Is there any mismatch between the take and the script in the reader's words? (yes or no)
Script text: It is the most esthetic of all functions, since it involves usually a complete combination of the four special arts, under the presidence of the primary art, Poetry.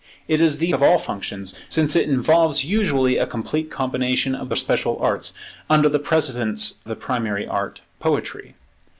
yes